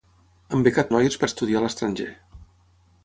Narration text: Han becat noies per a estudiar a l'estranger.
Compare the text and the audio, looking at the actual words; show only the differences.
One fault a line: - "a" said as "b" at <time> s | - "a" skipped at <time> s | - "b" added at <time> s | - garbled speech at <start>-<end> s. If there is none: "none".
none